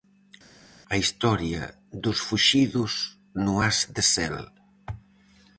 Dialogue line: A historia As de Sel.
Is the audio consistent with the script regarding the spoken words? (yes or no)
no